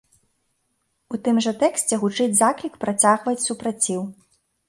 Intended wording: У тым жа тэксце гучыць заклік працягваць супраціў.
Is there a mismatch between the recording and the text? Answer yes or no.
no